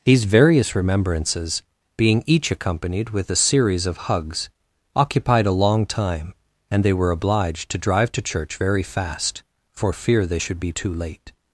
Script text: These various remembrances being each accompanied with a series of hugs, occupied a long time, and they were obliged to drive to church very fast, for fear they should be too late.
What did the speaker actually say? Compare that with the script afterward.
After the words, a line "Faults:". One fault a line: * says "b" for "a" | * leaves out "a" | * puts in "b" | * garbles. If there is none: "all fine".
These various remembrances being each accompanied with a series of hugs, occupied a long time, and they were obliged to drive to church very fast, for fear they should be too late.
Faults:
all fine